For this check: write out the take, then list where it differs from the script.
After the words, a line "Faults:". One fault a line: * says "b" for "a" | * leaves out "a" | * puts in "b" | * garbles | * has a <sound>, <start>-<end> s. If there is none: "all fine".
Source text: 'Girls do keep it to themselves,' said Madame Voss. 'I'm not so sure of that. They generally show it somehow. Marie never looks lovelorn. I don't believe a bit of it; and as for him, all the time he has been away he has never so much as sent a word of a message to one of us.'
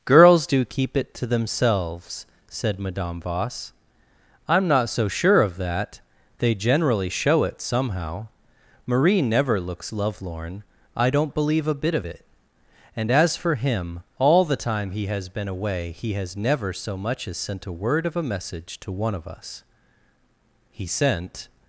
'Girls do keep it to themselves,' said Madame Voss. 'I'm not so sure of that. They generally show it somehow. Marie never looks lovelorn. I don't believe a bit of it; and as for him, all the time he has been away he has never so much as sent a word of a message to one of us.' 'He sent
Faults:
* puts in "He sent"